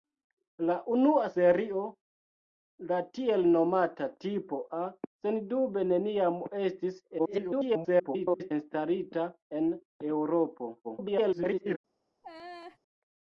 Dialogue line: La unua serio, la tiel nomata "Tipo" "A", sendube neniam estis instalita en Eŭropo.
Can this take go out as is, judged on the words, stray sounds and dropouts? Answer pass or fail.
fail